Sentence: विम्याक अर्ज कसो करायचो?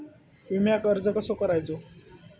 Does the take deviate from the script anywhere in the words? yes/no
no